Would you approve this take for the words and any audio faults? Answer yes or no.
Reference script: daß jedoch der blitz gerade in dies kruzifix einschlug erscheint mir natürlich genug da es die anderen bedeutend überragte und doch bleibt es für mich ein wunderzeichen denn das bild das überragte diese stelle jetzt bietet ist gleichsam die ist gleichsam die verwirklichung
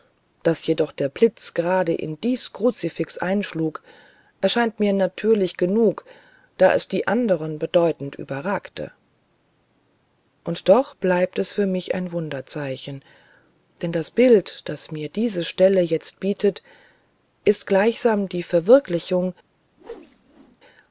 no